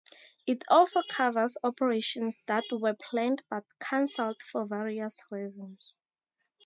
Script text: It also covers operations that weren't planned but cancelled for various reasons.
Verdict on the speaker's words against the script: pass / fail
fail